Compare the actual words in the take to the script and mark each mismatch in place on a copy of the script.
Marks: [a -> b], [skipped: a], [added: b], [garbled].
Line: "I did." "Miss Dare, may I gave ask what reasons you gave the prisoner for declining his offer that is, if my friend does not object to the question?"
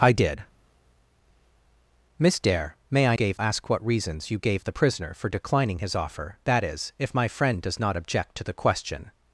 "I did." "Miss Dare, may I gave ask what reasons you gave the prisoner for declining his offer that is, if my friend does not object to the question?"